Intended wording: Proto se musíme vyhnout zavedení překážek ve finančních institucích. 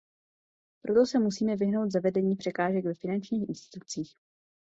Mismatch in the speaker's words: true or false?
false